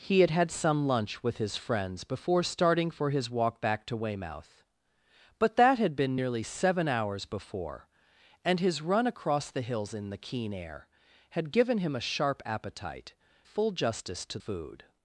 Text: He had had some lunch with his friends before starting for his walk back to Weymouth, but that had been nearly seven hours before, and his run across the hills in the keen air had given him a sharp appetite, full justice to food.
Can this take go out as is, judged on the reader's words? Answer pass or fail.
pass